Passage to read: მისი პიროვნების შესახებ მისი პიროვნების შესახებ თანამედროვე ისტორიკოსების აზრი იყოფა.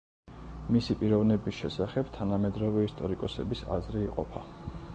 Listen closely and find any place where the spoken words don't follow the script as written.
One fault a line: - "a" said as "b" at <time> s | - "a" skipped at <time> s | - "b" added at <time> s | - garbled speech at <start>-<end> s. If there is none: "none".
- "მისი პიროვნების შესახებ" skipped at 2.1 s